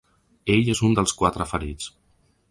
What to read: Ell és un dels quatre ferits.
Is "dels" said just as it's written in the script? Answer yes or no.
yes